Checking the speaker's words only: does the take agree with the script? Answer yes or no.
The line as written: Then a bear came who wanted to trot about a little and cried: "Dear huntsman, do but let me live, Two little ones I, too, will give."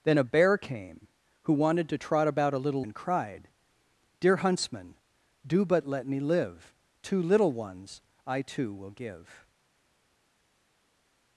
yes